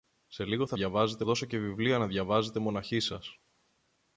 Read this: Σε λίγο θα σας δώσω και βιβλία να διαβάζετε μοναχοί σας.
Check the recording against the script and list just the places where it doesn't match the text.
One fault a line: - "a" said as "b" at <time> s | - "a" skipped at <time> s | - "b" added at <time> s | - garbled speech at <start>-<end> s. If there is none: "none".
- "σας" said as "διαβάζετε" at 0.7 s